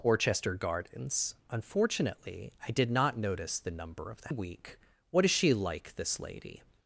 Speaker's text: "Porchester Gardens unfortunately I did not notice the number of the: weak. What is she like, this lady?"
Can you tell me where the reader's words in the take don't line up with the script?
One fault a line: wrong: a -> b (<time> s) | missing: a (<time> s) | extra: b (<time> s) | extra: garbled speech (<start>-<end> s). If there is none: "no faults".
no faults